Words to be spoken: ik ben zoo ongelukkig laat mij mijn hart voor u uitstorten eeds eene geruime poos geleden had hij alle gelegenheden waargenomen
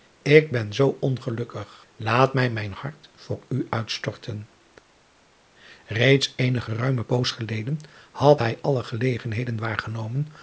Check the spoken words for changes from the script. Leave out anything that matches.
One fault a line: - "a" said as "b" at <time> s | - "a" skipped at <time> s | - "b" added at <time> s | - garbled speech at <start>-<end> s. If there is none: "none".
none